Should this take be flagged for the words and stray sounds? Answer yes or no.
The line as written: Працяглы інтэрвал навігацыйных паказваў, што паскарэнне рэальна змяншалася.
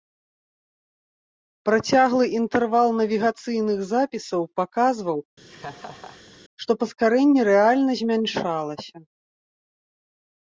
yes